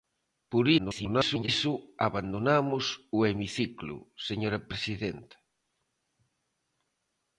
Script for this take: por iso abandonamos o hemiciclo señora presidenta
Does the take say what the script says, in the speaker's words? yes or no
no